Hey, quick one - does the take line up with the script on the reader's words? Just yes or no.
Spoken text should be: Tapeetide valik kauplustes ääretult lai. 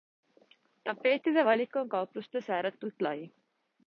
no